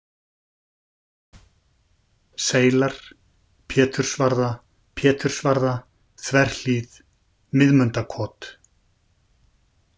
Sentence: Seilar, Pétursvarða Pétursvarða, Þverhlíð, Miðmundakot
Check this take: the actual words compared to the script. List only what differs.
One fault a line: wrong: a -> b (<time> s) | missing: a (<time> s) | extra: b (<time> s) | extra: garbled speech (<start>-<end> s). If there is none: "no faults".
no faults